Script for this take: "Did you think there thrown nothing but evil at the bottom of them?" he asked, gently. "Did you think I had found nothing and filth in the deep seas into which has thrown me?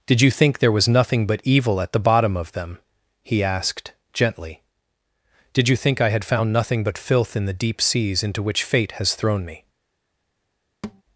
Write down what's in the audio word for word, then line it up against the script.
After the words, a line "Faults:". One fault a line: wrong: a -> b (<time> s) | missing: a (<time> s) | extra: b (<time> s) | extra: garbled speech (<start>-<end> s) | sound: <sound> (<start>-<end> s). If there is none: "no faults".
"Did you think there was nothing but evil at the bottom of them?" he asked, gently. "Did you think I had found nothing but filth in the deep seas into which fate has thrown me?
Faults:
wrong: thrown -> was (0.7 s)
wrong: and -> but (6.8 s)
extra: fate (8.6 s)
sound: thud (10.8-11.0 s)